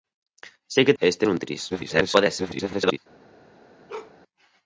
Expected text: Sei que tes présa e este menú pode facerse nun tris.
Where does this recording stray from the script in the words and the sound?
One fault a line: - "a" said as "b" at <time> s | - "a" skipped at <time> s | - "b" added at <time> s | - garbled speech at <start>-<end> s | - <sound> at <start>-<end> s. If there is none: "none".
- "tes présa" skipped at 1.0 s
- "menú pode facerse" skipped at 1.3 s
- garbled speech at 1.7-3.0 s
- bark at 3.9-4.2 s